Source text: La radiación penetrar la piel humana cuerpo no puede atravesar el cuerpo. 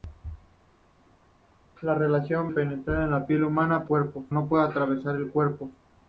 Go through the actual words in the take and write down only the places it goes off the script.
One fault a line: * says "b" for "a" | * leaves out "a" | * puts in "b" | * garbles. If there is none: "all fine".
all fine